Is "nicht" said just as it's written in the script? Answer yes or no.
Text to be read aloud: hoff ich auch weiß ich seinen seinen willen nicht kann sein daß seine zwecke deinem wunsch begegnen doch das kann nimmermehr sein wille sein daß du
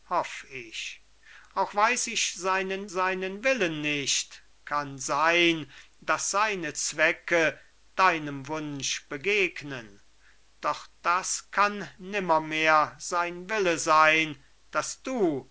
yes